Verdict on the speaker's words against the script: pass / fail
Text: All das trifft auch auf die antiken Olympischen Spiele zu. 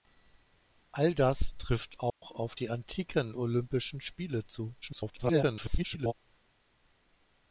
fail